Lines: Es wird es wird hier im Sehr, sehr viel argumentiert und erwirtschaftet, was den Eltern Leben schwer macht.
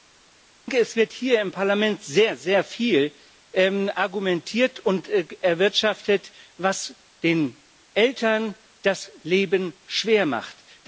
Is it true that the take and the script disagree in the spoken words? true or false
true